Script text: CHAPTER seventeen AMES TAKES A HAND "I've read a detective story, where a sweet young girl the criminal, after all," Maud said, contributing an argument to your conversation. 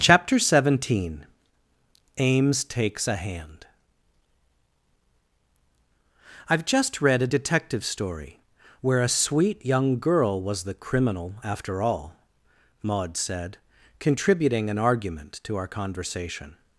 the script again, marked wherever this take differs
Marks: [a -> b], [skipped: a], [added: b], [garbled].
CHAPTER seventeen AMES TAKES A HAND "I've [added: just] read a detective story, where a sweet young girl [added: was] the criminal, after all," Maud said, contributing an argument to [your -> our] conversation.